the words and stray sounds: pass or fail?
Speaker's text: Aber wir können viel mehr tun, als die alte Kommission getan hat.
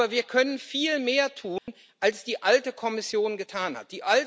fail